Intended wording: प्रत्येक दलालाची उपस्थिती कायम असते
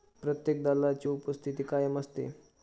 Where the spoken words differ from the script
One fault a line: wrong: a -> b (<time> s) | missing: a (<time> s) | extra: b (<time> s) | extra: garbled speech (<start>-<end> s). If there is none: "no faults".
no faults